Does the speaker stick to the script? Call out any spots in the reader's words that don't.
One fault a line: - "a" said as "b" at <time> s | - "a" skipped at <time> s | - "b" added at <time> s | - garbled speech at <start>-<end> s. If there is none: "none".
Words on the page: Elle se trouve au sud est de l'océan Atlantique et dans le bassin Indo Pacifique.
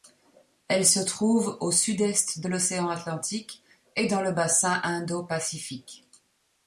none